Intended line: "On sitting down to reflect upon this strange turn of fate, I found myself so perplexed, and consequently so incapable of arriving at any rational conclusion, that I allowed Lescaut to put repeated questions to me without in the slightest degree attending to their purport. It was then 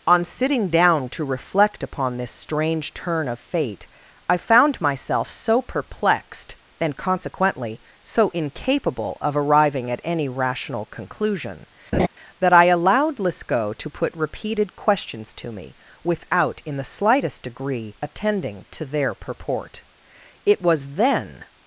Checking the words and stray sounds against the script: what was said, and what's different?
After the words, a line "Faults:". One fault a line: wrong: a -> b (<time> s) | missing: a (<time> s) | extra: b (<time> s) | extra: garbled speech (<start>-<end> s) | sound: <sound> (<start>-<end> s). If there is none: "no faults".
"On sitting down to reflect upon this strange turn of fate, I found myself so perplexed, and consequently so incapable of arriving at any rational conclusion, that I allowed Lescaut to put repeated questions to me without in the slightest degree attending to their purport. It was then
Faults:
sound: laugh (11.9-12.1 s)